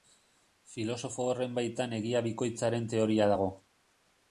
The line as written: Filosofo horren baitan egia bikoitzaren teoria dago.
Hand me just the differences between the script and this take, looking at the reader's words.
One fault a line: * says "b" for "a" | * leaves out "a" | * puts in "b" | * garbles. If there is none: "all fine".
all fine